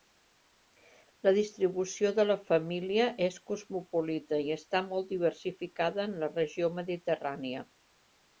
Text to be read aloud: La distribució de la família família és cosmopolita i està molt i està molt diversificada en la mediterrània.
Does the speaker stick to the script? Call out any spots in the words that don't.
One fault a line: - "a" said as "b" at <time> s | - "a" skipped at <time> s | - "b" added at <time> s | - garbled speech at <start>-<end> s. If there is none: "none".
- "família" skipped at 3.0 s
- "i està molt" skipped at 5.1 s
- "regió" added at 6.4 s